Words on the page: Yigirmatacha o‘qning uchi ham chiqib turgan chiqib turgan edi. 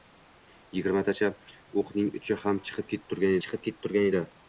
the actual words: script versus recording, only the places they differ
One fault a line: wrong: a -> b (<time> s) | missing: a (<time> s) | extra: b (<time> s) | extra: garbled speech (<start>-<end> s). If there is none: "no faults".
no faults